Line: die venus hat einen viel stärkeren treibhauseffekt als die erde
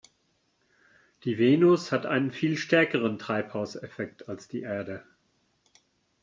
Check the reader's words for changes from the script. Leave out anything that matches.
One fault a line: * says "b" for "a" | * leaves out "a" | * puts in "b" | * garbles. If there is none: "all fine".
all fine